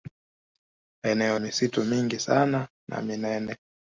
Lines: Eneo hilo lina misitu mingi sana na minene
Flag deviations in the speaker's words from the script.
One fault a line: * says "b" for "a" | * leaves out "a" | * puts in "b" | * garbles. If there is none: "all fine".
* leaves out "hilo lina"